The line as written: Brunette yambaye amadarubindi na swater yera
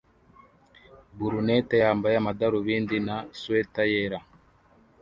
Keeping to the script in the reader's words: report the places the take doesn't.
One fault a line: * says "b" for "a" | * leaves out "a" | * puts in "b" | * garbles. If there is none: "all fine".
all fine